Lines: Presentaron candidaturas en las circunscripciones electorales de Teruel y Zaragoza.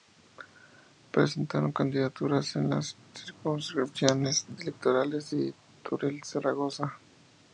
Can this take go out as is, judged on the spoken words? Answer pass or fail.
pass